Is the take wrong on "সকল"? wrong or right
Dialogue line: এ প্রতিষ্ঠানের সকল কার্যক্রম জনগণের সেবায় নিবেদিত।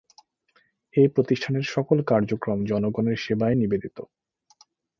right